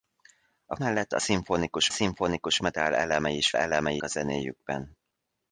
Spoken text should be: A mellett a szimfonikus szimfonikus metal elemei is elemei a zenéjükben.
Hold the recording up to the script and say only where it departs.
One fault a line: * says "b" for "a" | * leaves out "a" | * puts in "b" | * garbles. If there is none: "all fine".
all fine